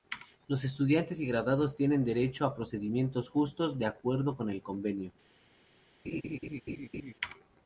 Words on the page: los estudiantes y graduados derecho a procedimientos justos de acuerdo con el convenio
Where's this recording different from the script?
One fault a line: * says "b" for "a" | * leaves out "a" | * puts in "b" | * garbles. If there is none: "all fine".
* puts in "tienen"